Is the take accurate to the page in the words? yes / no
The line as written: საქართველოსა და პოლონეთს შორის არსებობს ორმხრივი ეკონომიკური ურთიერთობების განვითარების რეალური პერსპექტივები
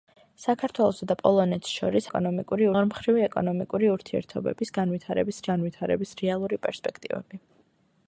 no